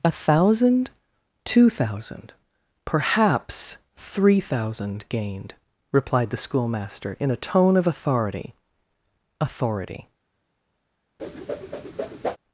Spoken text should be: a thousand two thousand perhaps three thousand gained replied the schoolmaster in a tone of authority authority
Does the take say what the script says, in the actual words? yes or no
yes